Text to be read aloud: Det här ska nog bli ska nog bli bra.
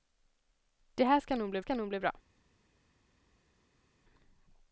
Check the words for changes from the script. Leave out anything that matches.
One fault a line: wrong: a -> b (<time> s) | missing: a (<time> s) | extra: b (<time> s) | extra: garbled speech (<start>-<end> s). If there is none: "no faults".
no faults